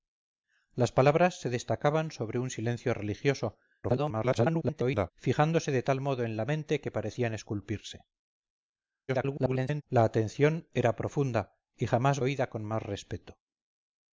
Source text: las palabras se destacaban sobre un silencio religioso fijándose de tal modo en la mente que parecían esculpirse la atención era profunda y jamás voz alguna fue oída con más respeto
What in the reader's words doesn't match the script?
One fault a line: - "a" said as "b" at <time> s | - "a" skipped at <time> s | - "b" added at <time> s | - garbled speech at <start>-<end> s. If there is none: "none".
- garbled speech at 3.8-5.1 s
- garbled speech at 9.1-9.8 s
- "voz alguna fue" skipped at 12.2 s